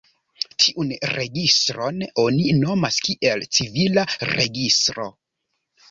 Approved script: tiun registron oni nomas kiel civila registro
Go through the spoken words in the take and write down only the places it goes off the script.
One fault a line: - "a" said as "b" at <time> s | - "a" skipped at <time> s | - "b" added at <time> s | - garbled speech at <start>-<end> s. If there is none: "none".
none